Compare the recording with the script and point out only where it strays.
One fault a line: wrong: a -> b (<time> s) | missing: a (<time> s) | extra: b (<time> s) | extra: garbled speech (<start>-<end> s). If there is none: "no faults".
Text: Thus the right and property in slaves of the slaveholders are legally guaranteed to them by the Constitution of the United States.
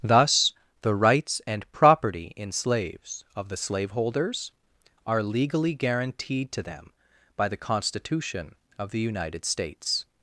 wrong: right -> rights (0.9 s)